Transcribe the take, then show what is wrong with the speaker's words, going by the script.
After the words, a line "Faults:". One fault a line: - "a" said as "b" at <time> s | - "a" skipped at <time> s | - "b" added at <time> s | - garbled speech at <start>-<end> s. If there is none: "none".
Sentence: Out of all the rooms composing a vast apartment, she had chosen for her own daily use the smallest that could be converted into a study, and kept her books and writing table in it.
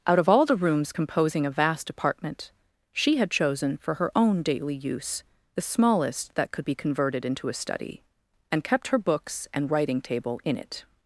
Out of all the rooms composing a vast apartment, she had chosen for her own daily use the smallest that could be converted into a study, and kept her books and writing table in it.
Faults:
none